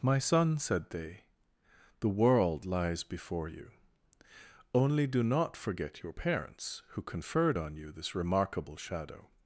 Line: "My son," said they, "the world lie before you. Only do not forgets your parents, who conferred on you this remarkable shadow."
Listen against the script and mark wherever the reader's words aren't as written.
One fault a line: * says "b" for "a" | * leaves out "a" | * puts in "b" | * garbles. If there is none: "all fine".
* says "lies" for "lie"
* says "forget" for "forgets"